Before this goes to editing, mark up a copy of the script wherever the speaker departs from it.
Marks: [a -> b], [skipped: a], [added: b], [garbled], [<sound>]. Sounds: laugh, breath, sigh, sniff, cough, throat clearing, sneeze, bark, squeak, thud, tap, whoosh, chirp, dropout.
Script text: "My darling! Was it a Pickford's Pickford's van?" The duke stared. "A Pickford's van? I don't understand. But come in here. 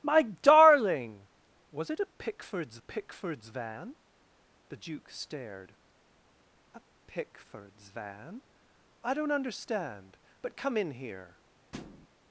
"My darling! Was it a Pickford's Pickford's van?" The duke stared. "A Pickford's van? I don't understand. But come in here. [thud]